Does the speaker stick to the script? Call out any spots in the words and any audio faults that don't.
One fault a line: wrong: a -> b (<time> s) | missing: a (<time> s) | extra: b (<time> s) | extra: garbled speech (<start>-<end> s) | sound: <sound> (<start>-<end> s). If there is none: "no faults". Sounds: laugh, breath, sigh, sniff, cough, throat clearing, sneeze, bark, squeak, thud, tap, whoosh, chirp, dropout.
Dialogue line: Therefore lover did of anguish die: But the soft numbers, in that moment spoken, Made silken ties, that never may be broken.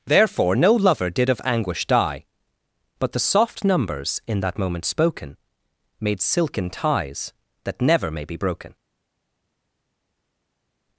extra: no (0.6 s)